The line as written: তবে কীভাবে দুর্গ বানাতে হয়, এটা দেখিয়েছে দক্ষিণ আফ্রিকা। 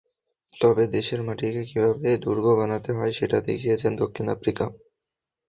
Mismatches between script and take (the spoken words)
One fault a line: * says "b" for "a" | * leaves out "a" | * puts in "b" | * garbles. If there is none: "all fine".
* puts in "দেশের মাটিকে"
* says "সেটা" for "এটা"